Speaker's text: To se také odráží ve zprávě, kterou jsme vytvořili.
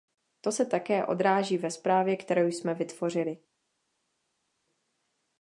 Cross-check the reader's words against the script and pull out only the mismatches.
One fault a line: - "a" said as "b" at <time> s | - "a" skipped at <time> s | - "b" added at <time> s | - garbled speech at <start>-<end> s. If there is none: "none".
none